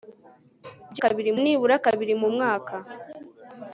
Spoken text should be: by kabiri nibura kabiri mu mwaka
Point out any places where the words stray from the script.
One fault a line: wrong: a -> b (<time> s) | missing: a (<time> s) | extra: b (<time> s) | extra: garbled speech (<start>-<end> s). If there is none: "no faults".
no faults